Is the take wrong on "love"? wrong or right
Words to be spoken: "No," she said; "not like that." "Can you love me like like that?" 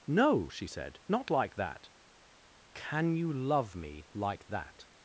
right